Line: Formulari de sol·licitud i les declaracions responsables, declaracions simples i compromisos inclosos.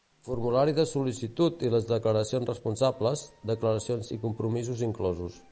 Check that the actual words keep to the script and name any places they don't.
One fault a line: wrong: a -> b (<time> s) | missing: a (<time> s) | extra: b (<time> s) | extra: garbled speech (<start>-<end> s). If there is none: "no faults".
missing: simples (4.1 s)